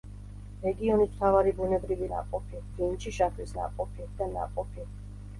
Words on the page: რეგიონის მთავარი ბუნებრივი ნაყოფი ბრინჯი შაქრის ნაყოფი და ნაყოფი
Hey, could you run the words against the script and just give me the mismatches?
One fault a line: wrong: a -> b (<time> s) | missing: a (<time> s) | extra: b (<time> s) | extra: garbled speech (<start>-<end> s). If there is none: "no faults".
no faults